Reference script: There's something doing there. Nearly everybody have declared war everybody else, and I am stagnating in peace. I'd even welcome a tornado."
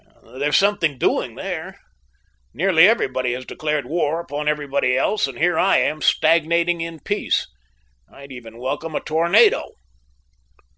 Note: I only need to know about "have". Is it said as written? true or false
false